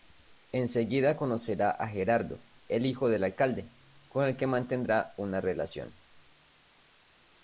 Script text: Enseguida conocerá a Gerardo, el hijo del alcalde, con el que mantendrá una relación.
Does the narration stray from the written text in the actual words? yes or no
no